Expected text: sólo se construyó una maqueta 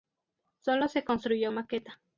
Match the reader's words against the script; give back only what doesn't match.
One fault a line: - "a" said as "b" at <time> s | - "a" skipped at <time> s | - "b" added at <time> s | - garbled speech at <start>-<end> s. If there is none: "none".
- "una" skipped at 1.5 s